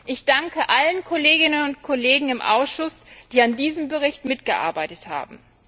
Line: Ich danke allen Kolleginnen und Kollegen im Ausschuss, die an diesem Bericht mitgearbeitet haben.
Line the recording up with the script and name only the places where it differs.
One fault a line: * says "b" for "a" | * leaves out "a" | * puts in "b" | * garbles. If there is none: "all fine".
all fine